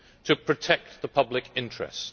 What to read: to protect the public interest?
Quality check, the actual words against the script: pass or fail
pass